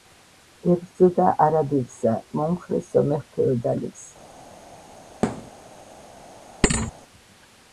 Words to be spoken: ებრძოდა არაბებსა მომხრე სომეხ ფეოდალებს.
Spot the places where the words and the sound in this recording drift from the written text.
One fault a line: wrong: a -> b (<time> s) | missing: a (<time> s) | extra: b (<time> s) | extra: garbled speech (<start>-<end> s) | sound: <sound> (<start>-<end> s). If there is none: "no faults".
sound: thud (5.2-5.5 s)
sound: thud (6.6-6.9 s)